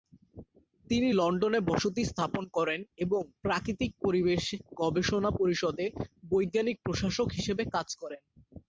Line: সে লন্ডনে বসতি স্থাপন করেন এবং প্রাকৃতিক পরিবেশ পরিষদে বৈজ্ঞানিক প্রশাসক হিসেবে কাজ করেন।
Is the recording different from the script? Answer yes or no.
yes